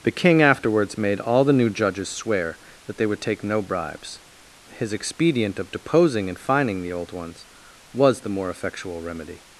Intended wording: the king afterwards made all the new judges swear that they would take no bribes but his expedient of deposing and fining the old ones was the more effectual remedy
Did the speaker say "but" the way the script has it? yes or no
no